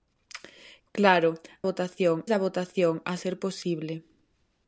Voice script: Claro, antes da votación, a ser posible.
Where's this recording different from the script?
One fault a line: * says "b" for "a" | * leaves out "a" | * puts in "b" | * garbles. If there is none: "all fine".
* says "votación" for "antes"